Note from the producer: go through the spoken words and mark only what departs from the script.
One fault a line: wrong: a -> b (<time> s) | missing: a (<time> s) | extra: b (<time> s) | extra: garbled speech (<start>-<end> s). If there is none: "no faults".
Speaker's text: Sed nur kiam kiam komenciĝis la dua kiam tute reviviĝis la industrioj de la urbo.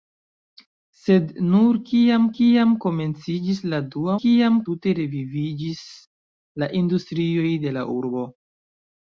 no faults